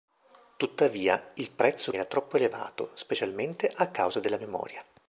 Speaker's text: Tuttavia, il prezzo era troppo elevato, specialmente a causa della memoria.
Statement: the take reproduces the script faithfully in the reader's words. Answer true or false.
true